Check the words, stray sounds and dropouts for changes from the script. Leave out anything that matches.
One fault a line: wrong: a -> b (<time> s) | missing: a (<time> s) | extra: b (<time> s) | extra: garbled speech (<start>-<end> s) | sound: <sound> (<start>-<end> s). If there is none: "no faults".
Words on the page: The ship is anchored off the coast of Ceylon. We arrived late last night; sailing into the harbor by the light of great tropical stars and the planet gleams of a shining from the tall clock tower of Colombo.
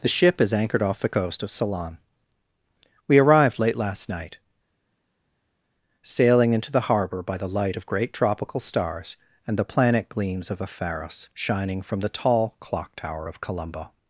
extra: pharos (10.7 s)